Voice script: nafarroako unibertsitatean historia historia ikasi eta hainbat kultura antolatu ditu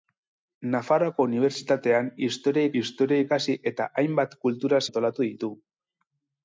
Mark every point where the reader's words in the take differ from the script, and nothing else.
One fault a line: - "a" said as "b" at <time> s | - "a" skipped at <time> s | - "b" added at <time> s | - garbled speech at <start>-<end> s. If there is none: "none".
none